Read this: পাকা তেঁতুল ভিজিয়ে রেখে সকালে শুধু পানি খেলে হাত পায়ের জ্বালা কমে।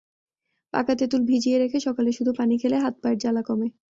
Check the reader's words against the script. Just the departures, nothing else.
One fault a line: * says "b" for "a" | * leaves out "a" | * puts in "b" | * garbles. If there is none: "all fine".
all fine